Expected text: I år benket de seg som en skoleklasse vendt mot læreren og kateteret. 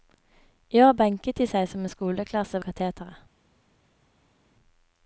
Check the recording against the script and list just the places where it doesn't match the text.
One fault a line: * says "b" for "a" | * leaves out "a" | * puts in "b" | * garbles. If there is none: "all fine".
* leaves out "vendt mot læreren"